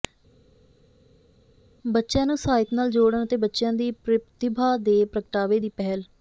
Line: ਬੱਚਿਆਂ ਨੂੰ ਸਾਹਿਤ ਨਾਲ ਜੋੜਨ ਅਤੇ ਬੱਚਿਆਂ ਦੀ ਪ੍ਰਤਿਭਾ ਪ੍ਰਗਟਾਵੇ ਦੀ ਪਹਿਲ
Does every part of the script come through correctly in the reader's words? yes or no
no